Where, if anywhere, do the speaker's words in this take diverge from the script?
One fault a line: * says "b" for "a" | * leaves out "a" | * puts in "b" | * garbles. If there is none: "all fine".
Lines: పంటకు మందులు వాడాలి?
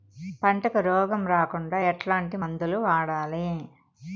* puts in "రోగం రాకుండా ఎట్లాంటి"